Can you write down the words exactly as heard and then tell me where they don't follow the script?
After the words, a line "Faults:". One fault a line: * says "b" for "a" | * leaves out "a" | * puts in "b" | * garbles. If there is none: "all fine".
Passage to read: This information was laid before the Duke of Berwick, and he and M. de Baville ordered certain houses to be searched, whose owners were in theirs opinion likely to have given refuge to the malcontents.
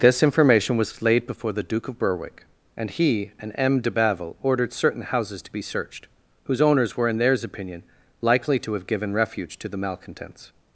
This information was laid before the Duke of Berwick, and he and M. de Baville ordered certain houses to be searched, whose owners were in theirs opinion likely to have given refuge to the malcontents.
Faults:
all fine